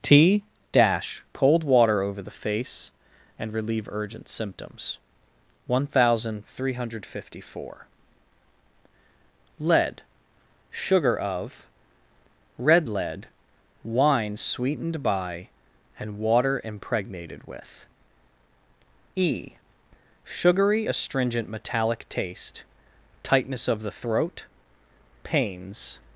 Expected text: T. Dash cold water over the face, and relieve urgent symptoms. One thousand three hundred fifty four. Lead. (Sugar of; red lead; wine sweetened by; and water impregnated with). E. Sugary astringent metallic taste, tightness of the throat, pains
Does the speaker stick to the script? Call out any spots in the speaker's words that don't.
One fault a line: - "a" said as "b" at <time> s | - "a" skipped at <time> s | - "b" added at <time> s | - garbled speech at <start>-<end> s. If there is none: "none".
none